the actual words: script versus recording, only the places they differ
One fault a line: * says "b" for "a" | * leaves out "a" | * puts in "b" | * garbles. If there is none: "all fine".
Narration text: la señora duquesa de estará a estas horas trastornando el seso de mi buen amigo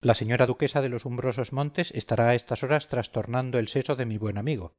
* puts in "los umbrosos montes"